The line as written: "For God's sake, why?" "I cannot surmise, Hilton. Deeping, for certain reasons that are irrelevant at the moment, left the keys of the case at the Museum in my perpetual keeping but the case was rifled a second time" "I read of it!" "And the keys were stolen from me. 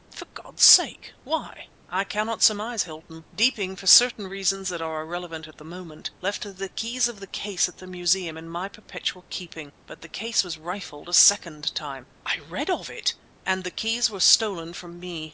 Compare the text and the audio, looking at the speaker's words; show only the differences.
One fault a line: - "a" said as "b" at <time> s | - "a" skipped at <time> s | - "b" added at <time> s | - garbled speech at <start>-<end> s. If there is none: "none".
none